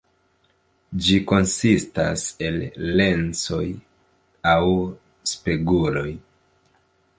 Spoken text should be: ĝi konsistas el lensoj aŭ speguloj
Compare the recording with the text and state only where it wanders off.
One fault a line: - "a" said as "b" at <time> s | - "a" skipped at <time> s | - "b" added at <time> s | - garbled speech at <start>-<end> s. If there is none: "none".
none